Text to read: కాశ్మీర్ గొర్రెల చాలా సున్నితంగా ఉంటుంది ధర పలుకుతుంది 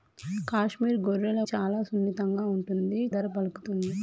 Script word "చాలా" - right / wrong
right